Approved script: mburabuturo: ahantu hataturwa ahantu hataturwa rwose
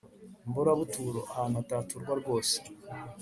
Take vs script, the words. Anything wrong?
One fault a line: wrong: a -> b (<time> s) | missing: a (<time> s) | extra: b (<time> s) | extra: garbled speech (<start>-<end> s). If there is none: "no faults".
missing: ahantu hataturwa (2.1 s)